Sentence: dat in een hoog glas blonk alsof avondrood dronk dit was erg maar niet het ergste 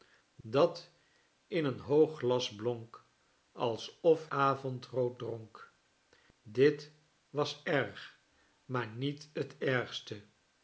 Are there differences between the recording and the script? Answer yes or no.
no